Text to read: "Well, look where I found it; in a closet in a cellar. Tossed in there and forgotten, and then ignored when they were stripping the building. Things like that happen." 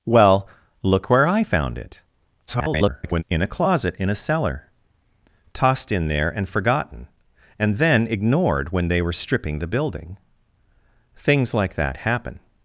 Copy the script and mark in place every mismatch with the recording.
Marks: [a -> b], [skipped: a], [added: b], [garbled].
"Well, look where I found it; [garbled] in a closet in a cellar. Tossed in there and forgotten, and then ignored when they were stripping the building. Things like that happen."